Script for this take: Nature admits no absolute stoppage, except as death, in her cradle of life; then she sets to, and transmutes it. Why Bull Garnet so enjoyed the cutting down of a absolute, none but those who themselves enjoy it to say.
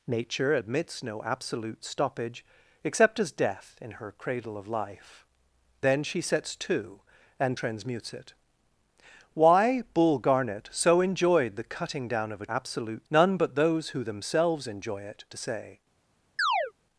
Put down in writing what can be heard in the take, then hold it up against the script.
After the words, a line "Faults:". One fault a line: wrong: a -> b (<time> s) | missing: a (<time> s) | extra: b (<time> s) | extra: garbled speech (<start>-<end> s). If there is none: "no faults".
Nature admits no absolute stoppage, except as death, in her cradle of life; then she sets to, and transmutes it. Why Bull Garnet so enjoyed the cutting down of a absolute, none but those who themselves enjoy it to say.
Faults:
no faults